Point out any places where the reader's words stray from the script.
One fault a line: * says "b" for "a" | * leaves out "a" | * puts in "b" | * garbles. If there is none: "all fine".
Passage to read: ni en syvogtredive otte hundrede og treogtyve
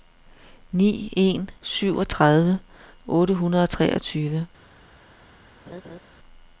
all fine